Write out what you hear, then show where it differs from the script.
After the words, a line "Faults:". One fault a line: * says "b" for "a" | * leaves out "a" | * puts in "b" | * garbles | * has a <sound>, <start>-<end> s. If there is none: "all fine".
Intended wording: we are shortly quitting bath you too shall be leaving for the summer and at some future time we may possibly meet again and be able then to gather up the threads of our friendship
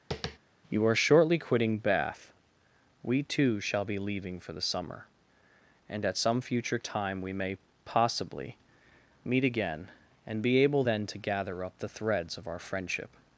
you are shortly quitting bath we too shall be leaving for the summer and at some future time we may possibly meet again and be able then to gather up the threads of our friendship
Faults:
* has a tap, 0.1-0.4 s
* says "you" for "we"
* says "we" for "you"